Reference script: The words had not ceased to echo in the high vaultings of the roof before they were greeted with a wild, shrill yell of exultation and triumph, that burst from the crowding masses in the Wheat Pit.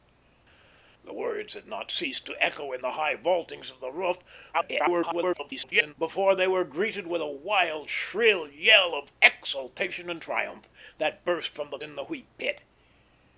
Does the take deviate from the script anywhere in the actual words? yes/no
yes